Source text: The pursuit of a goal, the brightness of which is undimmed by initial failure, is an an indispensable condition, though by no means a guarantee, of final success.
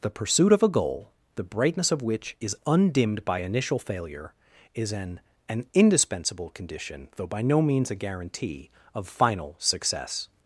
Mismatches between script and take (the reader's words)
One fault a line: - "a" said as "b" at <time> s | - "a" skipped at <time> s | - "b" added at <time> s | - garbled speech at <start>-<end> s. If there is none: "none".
none